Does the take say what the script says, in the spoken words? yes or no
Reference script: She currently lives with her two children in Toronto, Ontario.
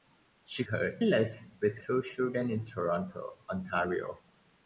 no